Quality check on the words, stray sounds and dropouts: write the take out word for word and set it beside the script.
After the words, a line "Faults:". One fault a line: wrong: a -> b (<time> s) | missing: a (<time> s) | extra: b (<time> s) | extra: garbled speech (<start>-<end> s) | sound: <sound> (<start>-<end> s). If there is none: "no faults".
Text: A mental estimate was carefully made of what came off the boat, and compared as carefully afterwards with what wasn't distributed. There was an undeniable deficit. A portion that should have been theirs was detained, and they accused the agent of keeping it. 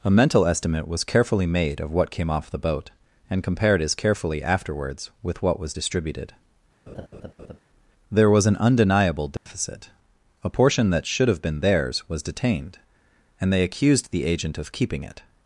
A mental estimate was carefully made of what came off the boat, and compared as carefully afterwards with what was distributed. There was an undeniable deficit. A portion that should have been theirs was detained, and they accused the agent of keeping it.
Faults:
wrong: wasn't -> was (5.6 s)
sound: laugh (6.9-7.6 s)
sound: dropout (9.4-9.5 s)